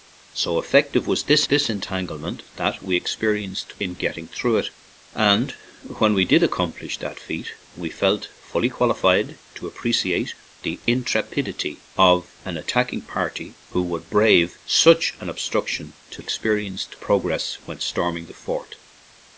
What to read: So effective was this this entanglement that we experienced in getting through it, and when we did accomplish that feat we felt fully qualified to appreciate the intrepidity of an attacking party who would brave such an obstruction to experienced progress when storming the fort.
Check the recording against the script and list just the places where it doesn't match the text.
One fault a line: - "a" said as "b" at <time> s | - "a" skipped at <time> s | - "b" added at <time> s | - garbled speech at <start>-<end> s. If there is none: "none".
none